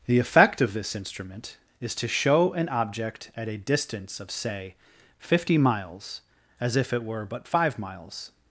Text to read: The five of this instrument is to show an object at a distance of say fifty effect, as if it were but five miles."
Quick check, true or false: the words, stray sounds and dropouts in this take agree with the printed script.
false